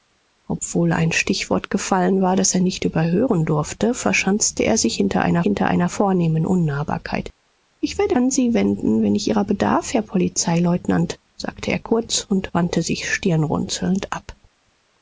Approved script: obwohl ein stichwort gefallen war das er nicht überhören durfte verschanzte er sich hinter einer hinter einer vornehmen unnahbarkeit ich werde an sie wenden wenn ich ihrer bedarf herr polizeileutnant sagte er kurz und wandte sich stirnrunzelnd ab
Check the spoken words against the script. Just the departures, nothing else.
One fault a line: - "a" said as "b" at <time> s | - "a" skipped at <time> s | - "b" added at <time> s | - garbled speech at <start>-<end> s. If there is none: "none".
none